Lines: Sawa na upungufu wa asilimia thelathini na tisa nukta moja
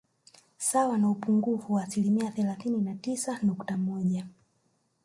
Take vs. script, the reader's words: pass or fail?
pass